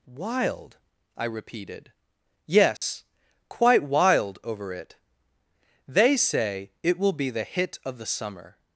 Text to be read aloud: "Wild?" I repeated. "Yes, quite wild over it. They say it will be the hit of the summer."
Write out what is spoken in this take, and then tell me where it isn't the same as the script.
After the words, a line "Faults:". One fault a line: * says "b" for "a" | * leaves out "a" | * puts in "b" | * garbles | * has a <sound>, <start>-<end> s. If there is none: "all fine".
"Wild?" I repeated. "Yes, quite wild over it. They say it will be the hit of the summer."
Faults:
* has a dropout, 2.8-2.8 s